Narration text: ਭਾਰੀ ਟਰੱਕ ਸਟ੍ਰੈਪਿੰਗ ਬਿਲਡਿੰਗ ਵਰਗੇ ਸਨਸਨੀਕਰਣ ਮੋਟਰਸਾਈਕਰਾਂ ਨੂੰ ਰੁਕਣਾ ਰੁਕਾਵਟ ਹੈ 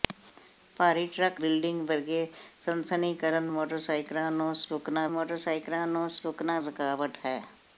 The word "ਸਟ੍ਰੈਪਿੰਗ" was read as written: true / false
false